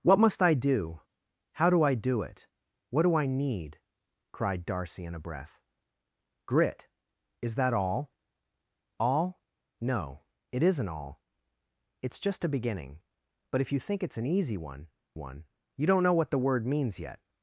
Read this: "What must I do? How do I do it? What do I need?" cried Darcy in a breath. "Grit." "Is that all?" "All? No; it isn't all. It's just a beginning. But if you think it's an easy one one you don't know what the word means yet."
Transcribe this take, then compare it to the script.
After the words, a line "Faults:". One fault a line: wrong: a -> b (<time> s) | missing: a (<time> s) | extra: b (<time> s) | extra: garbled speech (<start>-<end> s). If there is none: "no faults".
"What must I do? How do I do it? What do I need?" cried Darcy in a breath. "Grit." "Is that all?" "All? No; it isn't all. It's just a beginning. But if you think it's an easy one one you don't know what the word means yet."
Faults:
no faults